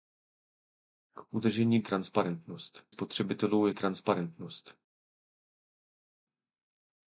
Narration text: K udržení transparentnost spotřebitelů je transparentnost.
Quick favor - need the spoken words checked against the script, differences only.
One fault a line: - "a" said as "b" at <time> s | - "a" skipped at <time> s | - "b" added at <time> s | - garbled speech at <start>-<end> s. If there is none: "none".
none